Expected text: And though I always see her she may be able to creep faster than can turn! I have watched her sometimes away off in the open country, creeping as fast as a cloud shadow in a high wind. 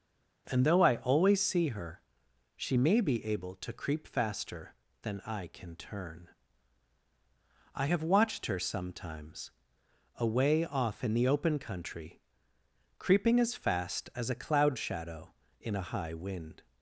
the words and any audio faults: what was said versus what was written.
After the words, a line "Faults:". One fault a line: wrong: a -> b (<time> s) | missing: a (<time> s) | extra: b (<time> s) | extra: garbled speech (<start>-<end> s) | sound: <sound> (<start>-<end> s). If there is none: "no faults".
And though I always see her she may be able to creep faster than I can turn! I have watched her sometimes away off in the open country, creeping as fast as a cloud shadow in a high wind.
Faults:
extra: I (5.3 s)